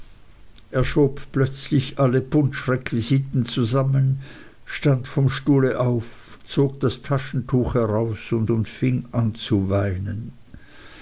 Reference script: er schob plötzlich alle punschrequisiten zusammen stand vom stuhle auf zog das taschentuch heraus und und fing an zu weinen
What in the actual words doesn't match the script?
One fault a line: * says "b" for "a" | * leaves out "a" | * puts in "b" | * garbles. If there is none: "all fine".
all fine